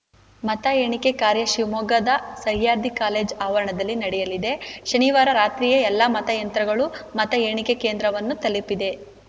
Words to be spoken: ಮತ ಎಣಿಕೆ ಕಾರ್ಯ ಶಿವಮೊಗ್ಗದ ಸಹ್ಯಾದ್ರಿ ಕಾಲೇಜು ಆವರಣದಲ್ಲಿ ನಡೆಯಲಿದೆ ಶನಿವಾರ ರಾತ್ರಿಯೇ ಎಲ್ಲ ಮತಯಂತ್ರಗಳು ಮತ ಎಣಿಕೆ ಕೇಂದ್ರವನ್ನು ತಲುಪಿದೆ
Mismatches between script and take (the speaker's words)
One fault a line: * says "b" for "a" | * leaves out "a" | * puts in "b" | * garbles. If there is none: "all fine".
all fine